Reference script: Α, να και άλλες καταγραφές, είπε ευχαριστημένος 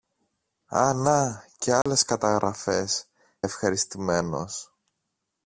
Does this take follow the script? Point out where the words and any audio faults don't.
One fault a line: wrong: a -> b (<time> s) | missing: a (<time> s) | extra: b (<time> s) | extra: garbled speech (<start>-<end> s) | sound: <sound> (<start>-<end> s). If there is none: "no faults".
sound: dropout (1.8-1.9 s)
missing: είπε (3.0 s)